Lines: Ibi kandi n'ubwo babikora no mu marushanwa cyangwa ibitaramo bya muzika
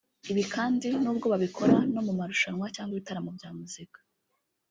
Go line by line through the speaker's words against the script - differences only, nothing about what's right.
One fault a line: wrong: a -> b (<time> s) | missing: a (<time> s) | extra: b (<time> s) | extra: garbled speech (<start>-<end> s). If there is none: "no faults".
no faults